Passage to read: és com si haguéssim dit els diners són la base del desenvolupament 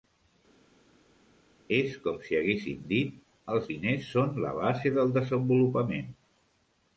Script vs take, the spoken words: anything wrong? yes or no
no